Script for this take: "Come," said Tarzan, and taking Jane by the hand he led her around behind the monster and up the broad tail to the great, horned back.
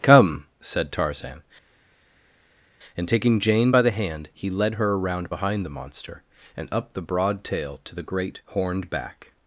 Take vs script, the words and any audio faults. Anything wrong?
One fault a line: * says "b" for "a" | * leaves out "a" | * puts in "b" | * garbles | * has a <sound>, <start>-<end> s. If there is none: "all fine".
all fine